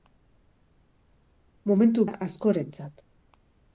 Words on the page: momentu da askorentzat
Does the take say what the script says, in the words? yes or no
yes